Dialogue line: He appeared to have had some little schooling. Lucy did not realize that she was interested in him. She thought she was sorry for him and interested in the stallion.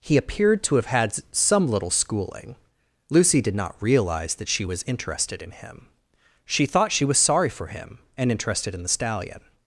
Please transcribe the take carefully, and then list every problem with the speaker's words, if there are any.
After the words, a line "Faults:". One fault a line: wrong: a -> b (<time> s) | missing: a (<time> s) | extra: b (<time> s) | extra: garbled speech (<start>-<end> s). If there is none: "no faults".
He appeared to have had some little schooling. Lucy did not realize that she was interested in him. She thought she was sorry for him and interested in the stallion.
Faults:
no faults